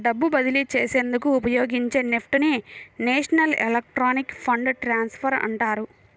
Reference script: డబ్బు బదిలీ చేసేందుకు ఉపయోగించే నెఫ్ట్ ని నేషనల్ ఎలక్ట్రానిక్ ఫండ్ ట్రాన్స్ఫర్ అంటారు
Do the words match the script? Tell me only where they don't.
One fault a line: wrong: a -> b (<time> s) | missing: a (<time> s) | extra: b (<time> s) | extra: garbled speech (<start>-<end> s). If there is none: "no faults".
no faults